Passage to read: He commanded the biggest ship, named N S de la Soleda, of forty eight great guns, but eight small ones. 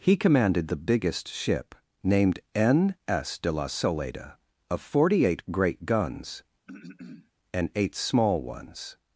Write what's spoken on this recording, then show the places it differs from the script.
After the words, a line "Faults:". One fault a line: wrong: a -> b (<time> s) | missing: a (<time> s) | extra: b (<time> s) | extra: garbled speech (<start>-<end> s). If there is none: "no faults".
He commanded the biggest ship, named N S de la Soleda, of forty eight great guns, and eight small ones.
Faults:
wrong: but -> and (7.5 s)